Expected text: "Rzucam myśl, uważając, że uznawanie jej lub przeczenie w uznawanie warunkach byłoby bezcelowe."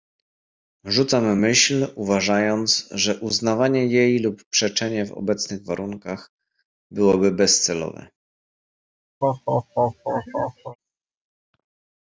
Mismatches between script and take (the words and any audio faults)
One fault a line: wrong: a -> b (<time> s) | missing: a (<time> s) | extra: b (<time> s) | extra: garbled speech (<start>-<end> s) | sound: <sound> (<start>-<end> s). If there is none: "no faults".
wrong: uznawanie -> obecnych (5.1 s)
sound: laugh (9.2-10.8 s)